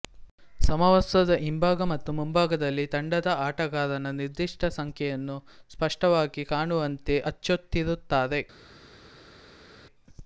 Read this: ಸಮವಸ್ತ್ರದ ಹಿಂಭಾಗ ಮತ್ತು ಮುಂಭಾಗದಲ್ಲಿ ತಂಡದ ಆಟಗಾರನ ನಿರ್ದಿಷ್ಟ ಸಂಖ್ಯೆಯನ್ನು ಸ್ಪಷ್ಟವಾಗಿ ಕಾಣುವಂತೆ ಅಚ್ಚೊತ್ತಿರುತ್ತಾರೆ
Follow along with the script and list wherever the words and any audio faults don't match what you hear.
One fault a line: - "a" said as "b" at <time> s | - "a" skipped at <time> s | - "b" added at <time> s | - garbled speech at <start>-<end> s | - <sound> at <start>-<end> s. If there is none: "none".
none